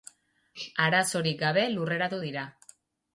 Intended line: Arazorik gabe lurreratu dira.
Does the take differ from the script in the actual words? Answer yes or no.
no